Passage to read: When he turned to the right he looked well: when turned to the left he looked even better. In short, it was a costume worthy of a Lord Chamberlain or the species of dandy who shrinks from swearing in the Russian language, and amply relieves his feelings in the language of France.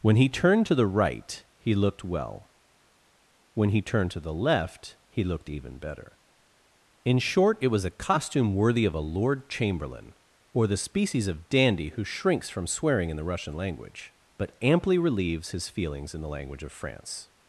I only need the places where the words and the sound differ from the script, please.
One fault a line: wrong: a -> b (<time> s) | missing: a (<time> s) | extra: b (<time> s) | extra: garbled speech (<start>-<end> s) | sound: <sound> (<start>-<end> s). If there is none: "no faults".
extra: he (3.7 s)
wrong: and -> but (14.4 s)